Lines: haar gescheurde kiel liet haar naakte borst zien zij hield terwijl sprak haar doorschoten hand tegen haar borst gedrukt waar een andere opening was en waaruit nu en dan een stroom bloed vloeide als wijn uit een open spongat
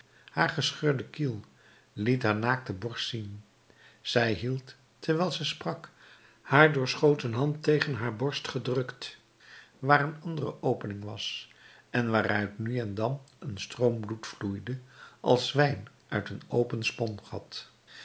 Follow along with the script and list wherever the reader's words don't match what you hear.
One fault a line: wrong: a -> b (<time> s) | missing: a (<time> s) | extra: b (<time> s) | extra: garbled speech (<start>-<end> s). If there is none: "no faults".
extra: ze (5.3 s)